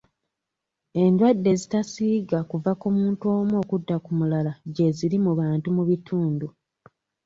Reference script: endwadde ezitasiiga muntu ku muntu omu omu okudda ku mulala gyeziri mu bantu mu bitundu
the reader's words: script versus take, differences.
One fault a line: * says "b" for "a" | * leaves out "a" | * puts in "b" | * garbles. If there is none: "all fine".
* says "kuva" for "muntu"
* leaves out "omu"